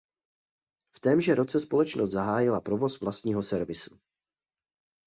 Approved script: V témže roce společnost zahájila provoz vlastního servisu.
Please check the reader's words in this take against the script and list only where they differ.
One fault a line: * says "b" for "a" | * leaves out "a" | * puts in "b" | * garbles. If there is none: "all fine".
all fine